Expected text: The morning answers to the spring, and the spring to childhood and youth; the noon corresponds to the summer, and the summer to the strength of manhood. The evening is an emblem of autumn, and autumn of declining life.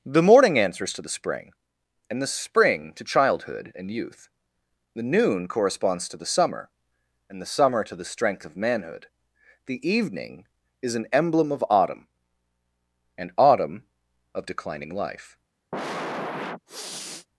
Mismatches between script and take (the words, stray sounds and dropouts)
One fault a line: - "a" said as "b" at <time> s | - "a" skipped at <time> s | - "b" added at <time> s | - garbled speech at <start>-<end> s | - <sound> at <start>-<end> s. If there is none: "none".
- sniff at 15.7-17.3 s